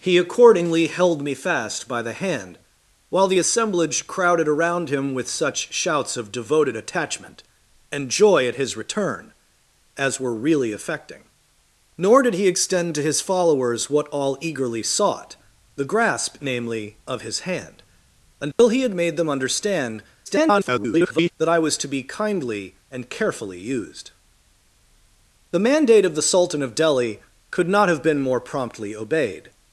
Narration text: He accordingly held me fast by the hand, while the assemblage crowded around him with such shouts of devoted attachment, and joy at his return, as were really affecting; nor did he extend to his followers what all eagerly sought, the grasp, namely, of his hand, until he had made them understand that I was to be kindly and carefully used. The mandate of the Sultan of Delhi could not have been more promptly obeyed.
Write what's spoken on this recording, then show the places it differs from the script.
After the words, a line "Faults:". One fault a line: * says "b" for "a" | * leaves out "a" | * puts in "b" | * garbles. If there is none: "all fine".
He accordingly held me fast by the hand, while the assemblage crowded around him with such shouts of devoted attachment, and joy at his return, as were really affecting; nor did he extend to his followers what all eagerly sought, the grasp, namely, of his hand, until he had made them understand [garbled] that I was to be kindly and carefully used. The mandate of the Sultan of Delhi could not have been more promptly obeyed.
Faults:
* garbles